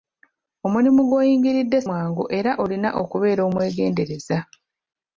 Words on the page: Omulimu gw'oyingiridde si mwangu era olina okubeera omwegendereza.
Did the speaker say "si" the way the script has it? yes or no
no